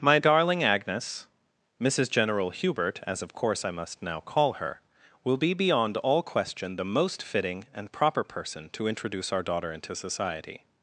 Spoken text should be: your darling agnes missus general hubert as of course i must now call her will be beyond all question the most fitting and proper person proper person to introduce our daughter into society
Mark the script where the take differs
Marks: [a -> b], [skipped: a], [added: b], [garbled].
[your -> my] darling agnes missus general hubert as of course i must now call her will be beyond all question the most fitting and proper person [skipped: proper person] to introduce our daughter into society